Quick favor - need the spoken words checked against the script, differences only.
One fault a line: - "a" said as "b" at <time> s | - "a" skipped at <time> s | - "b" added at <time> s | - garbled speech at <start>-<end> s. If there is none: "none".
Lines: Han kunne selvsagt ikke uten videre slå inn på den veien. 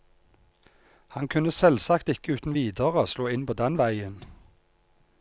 none